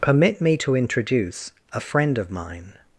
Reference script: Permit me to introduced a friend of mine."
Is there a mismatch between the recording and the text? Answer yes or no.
yes